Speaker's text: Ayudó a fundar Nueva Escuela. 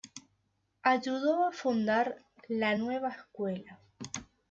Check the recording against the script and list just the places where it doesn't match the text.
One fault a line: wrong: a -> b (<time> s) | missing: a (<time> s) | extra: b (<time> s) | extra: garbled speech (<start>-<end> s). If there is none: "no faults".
extra: La (2.5 s)